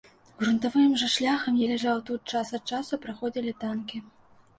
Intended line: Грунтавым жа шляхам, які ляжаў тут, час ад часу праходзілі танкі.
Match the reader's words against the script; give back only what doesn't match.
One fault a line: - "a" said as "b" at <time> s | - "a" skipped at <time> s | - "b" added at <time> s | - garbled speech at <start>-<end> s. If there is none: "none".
- "які" skipped at 1.6 s